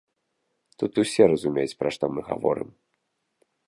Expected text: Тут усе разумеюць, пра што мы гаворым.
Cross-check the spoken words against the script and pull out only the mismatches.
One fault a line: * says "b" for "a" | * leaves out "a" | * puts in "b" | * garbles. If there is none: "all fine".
all fine